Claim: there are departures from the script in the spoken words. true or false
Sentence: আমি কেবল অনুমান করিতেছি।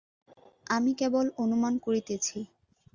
false